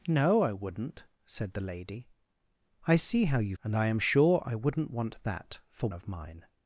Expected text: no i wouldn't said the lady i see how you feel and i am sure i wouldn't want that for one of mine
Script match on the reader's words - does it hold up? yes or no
no